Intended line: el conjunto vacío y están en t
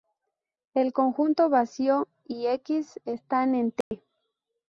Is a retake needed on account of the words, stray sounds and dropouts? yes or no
yes